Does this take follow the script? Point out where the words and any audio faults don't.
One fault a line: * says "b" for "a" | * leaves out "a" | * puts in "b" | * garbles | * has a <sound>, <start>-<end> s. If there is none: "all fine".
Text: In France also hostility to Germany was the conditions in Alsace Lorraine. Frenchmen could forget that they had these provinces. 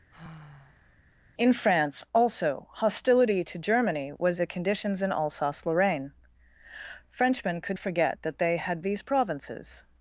* has a sigh, 0.1-1.0 s